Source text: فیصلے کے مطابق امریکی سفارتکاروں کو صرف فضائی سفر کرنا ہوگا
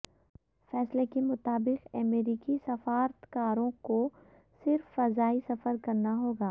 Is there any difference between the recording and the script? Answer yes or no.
no